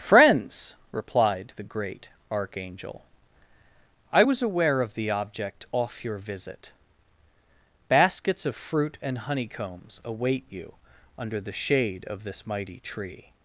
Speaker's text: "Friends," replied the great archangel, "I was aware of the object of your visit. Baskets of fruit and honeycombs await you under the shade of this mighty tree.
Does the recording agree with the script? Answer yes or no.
no